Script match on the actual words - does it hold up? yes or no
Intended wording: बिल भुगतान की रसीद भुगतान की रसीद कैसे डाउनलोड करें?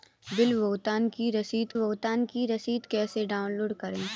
yes